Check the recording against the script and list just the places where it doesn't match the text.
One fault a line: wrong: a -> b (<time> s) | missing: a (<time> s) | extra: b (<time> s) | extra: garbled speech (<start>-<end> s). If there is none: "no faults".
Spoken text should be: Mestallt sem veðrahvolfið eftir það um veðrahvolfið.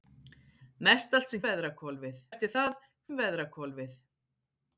no faults